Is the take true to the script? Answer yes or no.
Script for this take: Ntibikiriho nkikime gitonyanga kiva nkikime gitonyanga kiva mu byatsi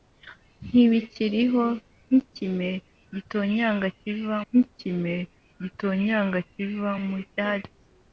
yes